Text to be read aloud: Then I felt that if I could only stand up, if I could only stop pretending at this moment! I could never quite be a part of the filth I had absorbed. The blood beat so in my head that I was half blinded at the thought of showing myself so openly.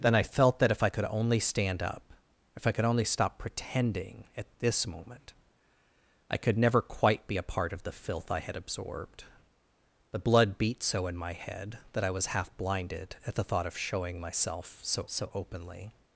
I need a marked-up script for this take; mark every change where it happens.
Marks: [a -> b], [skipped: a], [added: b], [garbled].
Then I felt that if I could only stand up, if I could only stop pretending at this moment! I could never quite be a part of the filth I had absorbed. The blood beat so in my head that I was half blinded at the thought of showing myself so [added: so] openly.